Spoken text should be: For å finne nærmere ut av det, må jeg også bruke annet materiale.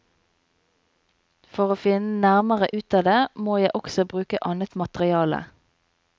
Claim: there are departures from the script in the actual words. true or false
false